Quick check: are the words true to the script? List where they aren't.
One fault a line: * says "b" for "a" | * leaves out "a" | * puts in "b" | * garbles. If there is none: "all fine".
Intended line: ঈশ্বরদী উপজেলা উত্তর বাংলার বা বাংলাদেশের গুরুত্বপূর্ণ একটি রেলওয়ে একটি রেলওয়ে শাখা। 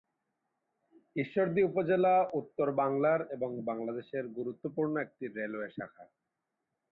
* says "এবং" for "বা"
* leaves out "একটি রেলওয়ে"